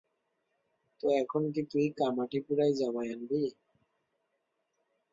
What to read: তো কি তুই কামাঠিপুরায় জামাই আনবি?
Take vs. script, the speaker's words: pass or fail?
fail